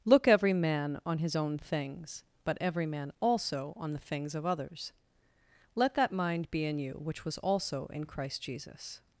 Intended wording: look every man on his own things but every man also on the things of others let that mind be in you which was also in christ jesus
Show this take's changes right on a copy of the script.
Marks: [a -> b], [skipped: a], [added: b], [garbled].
look every man on his own things but every man also on the things of others let that mind be in you which was also in christ jesus